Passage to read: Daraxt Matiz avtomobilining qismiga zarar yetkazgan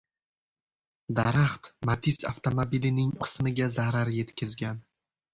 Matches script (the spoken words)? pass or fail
pass